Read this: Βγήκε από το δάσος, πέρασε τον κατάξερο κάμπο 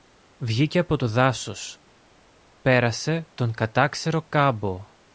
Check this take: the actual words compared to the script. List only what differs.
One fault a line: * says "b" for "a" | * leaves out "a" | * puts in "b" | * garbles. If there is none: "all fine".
all fine